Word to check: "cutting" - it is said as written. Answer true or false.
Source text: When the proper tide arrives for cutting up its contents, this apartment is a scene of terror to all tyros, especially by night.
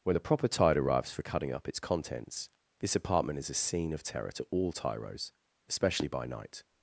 true